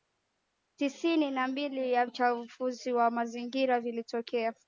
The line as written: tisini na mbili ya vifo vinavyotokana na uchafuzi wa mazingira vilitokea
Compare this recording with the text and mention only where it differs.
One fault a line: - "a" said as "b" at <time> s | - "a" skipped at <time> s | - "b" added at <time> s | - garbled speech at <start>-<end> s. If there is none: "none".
- "vifo vinavyotokana na" skipped at 2.0 s